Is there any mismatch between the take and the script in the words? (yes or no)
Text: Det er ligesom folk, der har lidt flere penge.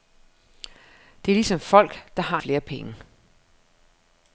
yes